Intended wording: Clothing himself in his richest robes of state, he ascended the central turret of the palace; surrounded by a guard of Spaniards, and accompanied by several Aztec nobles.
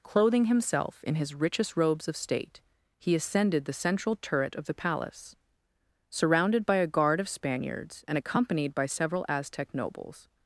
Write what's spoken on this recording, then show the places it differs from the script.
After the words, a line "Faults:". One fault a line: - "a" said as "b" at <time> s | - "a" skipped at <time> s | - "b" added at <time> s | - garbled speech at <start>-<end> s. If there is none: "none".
Clothing himself in his richest robes of state, he ascended the central turret of the palace; surrounded by a guard of Spaniards, and accompanied by several Aztec nobles.
Faults:
none